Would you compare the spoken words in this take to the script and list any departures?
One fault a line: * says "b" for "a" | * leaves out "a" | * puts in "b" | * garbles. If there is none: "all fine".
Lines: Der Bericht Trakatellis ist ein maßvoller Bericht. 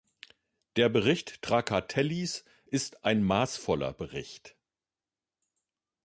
all fine